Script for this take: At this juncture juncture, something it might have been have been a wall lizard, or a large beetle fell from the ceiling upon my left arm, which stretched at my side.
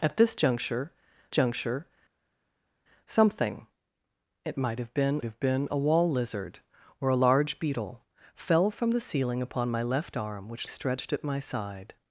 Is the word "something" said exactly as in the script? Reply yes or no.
yes